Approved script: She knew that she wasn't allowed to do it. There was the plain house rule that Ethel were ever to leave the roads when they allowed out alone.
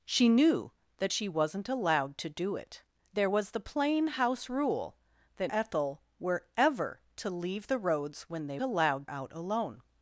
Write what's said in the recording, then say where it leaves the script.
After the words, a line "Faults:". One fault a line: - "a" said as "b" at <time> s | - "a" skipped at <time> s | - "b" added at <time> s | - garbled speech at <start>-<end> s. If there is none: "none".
She knew that she wasn't allowed to do it. There was the plain house rule that Ethel were ever to leave the roads when they allowed out alone.
Faults:
none